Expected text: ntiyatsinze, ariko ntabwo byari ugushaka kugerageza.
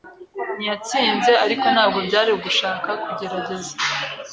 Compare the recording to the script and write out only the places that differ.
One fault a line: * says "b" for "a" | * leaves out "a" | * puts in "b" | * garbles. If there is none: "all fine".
all fine